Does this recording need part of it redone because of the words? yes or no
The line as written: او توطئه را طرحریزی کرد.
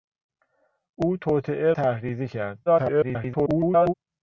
yes